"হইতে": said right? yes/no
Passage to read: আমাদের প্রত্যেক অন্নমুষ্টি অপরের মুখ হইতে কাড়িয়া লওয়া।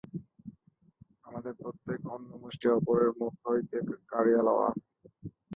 yes